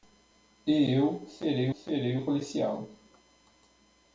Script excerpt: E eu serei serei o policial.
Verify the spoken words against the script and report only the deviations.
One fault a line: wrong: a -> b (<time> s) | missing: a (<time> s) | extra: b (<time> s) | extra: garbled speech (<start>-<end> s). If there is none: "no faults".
no faults